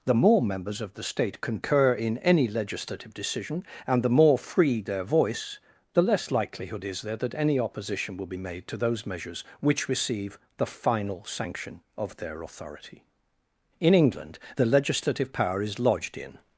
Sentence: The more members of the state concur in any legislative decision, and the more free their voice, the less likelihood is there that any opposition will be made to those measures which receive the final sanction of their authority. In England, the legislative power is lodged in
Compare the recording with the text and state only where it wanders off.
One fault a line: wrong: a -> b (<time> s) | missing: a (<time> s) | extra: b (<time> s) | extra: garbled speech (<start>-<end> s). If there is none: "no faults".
no faults